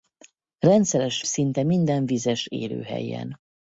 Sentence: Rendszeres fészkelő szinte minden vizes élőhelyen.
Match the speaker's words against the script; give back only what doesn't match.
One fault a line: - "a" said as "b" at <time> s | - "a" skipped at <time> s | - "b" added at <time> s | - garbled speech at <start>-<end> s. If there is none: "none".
- "fészkelő" skipped at 1.2 s